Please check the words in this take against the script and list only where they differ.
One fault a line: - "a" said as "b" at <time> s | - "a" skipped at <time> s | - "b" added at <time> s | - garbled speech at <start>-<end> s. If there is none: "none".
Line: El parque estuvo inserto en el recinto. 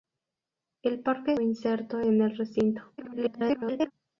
- "estuvo" skipped at 1.3 s
- garbled speech at 3.0-3.9 s